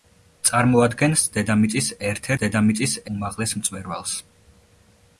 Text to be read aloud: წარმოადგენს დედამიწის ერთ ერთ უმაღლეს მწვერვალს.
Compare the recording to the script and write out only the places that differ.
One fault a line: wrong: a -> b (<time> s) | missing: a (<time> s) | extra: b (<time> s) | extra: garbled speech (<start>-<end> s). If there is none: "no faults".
wrong: ერთ -> დედამიწის (2.4 s)